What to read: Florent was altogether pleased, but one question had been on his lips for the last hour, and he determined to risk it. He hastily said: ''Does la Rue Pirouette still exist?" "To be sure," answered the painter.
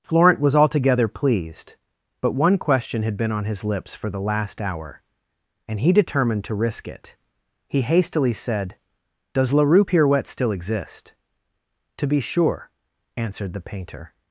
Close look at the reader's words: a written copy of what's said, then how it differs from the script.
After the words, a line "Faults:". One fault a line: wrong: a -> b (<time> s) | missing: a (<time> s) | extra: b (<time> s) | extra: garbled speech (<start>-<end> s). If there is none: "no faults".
Florent was altogether pleased, but one question had been on his lips for the last hour, and he determined to risk it. He hastily said: ''Does la Rue Pirouette still exist?" "To be sure," answered the painter.
Faults:
no faults